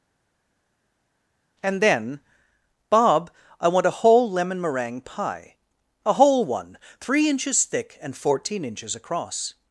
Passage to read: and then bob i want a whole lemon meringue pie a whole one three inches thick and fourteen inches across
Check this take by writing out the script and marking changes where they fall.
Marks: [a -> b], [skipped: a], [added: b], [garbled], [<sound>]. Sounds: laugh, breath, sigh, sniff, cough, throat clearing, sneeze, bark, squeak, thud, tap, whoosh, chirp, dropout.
and then bob i want a whole lemon meringue pie a whole one three inches thick and fourteen inches across